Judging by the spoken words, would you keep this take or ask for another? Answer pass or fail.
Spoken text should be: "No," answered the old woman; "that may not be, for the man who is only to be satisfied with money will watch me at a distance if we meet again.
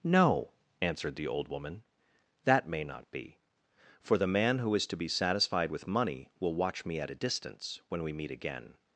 fail